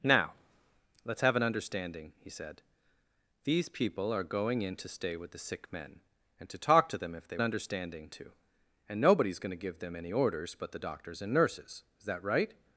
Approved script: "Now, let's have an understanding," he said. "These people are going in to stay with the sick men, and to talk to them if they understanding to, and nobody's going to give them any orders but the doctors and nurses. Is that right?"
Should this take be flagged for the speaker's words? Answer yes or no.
no